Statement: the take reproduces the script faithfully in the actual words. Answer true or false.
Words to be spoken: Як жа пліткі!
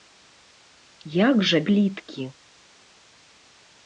true